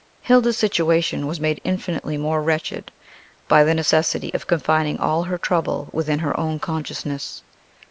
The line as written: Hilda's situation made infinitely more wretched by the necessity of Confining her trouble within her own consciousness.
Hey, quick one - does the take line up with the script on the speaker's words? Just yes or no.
no